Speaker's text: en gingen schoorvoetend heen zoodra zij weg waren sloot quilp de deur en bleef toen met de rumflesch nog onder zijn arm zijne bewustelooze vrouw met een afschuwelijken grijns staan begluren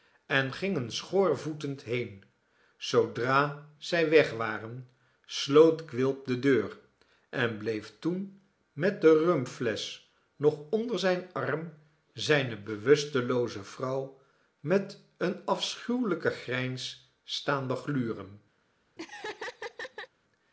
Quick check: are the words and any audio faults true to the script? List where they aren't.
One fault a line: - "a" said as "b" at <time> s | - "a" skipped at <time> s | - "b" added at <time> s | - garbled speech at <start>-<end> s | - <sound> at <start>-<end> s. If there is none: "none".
- laugh at 19.0-20.1 s